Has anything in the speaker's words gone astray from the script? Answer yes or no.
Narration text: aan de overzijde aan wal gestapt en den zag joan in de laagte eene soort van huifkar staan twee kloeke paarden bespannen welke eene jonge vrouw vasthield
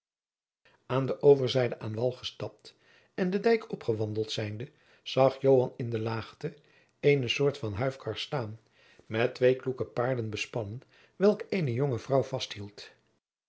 yes